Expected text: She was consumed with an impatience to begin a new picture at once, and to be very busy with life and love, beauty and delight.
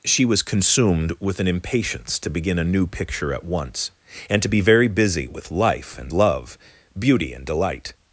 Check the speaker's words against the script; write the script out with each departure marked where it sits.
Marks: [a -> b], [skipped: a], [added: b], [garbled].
She was consumed with an impatience to begin a new picture at once, and to be very busy with life and love, beauty and delight.